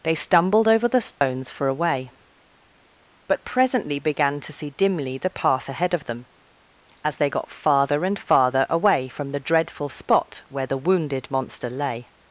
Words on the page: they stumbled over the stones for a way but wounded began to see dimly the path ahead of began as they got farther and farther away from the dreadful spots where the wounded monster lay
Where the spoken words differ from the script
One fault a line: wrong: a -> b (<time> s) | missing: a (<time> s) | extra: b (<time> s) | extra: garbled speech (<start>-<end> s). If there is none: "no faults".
wrong: wounded -> presently (3.5 s)
wrong: began -> them (6.0 s)
wrong: spots -> spot (9.9 s)